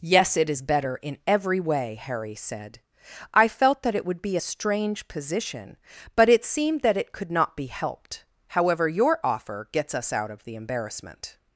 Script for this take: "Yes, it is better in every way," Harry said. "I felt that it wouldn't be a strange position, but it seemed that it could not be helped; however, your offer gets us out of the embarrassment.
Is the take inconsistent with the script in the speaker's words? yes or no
yes